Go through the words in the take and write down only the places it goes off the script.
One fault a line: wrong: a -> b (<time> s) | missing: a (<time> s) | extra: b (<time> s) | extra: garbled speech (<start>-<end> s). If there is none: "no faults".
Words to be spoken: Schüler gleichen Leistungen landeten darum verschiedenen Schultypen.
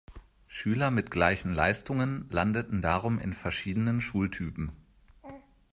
extra: mit (0.9 s)
extra: in (3.2 s)